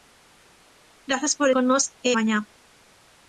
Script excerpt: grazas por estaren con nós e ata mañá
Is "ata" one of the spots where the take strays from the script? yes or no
yes